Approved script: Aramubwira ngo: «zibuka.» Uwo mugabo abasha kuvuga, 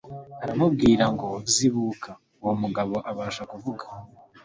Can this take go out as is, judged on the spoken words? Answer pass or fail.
pass